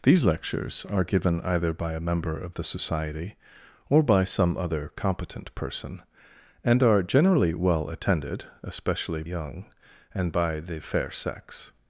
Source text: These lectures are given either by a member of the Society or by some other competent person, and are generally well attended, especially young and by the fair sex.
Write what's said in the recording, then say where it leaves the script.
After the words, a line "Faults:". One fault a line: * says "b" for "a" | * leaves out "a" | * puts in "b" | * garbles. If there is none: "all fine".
These lectures are given either by a member of the Society or by some other competent person, and are generally well attended, especially young and by the fair sex.
Faults:
all fine